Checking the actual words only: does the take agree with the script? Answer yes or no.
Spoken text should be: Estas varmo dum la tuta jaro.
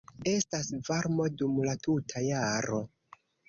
yes